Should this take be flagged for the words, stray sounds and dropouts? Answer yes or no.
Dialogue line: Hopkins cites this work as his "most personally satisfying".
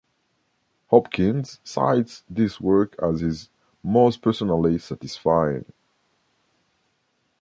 no